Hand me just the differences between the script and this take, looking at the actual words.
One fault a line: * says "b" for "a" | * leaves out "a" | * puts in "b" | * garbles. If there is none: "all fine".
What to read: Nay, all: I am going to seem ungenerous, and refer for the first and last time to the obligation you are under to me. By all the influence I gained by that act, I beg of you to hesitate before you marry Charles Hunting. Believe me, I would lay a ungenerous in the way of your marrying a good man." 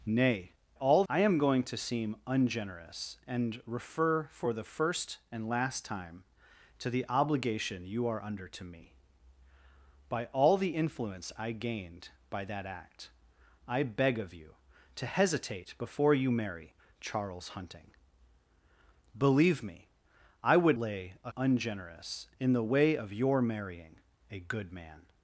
all fine